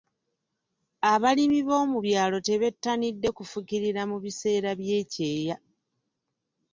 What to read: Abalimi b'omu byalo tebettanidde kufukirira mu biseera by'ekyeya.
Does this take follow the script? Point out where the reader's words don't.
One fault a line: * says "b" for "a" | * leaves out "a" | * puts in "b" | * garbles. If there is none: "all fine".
all fine